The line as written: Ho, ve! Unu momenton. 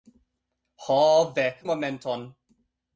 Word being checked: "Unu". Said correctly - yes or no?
no